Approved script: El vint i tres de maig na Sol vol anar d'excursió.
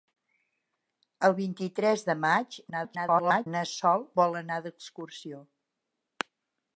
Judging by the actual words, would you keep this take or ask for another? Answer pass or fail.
fail